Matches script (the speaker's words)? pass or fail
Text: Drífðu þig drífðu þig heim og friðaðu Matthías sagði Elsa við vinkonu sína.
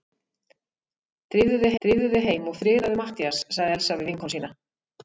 pass